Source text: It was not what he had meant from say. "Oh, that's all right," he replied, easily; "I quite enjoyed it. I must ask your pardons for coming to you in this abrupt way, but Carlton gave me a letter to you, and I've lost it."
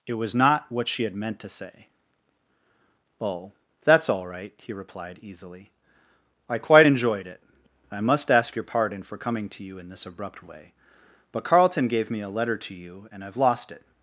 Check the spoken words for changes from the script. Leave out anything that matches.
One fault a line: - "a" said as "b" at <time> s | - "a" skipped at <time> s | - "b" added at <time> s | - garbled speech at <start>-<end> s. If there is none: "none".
- "he" said as "she" at 0.9 s
- "from" said as "to" at 1.4 s
- "pardons" said as "pardon" at 8.6 s